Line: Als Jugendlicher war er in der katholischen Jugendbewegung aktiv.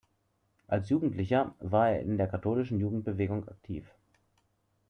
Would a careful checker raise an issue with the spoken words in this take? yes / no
no